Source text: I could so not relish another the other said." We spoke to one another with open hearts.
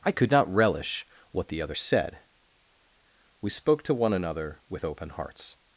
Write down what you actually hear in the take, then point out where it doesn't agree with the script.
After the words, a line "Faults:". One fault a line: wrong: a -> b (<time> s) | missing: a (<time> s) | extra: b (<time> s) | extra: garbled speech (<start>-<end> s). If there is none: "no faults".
I could not relish what the other said." We spoke to one another with open hearts.
Faults:
missing: so (0.3 s)
wrong: another -> what (1.3 s)